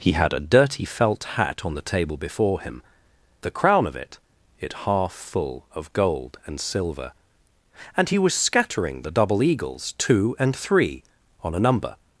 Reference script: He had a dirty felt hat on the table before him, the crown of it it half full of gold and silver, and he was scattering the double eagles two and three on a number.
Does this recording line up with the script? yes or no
yes